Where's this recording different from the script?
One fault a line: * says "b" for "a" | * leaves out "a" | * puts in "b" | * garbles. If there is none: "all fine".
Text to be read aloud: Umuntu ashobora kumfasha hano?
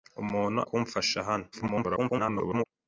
* leaves out "ashobora"
* garbles